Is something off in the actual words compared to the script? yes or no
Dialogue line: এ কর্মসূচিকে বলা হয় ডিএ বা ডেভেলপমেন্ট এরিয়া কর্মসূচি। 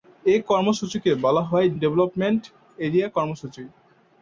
yes